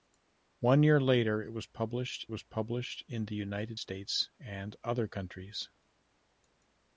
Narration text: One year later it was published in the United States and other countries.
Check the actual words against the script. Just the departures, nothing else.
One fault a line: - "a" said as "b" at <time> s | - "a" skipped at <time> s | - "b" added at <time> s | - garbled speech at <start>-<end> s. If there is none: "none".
- "was published" added at 2.3 s